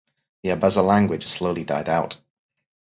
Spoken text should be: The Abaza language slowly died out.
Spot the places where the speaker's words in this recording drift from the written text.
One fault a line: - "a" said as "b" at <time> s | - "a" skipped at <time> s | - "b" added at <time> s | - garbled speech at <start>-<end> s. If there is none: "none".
none